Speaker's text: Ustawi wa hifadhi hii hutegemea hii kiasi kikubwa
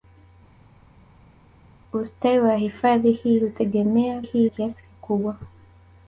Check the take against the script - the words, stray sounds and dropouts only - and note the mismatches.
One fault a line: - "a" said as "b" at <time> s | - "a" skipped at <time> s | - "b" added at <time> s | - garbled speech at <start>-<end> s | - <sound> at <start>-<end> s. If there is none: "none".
none